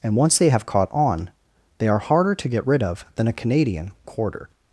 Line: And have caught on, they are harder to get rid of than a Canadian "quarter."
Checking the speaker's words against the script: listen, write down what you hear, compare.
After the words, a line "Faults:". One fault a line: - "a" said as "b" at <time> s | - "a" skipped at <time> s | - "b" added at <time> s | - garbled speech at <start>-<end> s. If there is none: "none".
And once they have caught on, they are harder to get rid of than a Canadian "quarter."
Faults:
- "once they" added at 0.1 s